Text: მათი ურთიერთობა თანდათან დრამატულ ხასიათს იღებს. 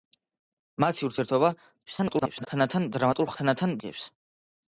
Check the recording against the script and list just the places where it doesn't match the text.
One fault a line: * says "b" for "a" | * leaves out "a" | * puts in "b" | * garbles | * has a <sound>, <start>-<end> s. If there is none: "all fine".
* garbles
* says "თანდათან" for "ხასიათს"